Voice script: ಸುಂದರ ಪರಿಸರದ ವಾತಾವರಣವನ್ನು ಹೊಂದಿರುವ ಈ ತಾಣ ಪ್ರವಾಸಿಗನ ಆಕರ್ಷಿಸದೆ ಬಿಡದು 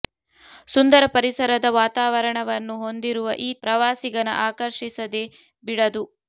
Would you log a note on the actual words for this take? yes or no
yes